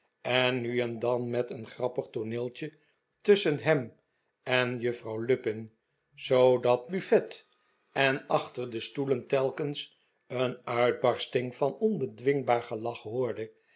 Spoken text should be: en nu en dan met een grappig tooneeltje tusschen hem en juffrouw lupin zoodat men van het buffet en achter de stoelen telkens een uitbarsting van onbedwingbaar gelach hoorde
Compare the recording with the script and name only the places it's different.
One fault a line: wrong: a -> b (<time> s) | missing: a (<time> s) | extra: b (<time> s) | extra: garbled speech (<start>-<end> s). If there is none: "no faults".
missing: men van het (6.9 s)